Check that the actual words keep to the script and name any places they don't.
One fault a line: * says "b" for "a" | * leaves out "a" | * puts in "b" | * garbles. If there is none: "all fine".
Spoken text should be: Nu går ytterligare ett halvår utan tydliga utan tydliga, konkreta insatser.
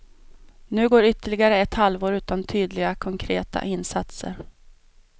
* leaves out "utan tydliga"